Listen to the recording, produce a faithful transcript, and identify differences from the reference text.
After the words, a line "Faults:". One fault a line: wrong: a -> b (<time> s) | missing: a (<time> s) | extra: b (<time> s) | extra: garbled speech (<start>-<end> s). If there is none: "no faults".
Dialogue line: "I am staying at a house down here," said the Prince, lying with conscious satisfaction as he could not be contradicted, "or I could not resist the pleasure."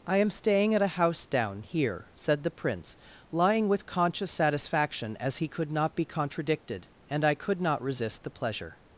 "I am staying at a house down here," said the Prince, lying with conscious satisfaction as he could not be contradicted, "and I could not resist the pleasure."
Faults:
wrong: or -> and (7.1 s)